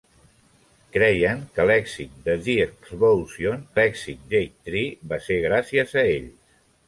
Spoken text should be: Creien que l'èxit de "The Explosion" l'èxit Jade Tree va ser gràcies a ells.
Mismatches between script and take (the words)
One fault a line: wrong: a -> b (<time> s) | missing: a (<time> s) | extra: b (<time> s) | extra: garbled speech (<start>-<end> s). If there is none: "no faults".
no faults